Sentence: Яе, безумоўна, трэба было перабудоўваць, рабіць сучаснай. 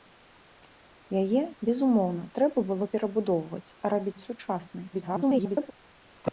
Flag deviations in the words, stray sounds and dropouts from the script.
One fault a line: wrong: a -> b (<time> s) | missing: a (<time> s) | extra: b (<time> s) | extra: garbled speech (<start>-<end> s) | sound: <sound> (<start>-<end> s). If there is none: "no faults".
extra: garbled speech (4.9-5.7 s)